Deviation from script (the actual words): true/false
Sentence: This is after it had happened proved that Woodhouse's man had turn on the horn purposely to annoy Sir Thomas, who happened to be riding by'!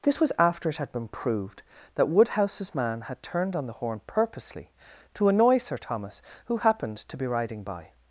true